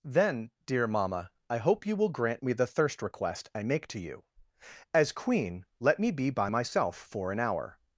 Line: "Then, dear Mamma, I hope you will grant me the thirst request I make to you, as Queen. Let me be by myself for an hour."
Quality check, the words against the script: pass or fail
pass